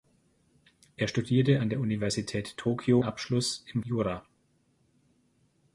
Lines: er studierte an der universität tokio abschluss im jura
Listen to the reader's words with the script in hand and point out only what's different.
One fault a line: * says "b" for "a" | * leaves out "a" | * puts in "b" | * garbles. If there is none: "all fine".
all fine